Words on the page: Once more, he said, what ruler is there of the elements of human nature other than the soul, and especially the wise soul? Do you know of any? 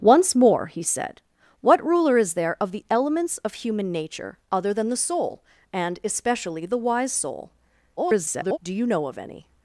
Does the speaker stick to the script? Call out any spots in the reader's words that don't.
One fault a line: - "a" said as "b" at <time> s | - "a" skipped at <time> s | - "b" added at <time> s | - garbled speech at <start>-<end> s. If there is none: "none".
- garbled speech at 8.0-8.6 s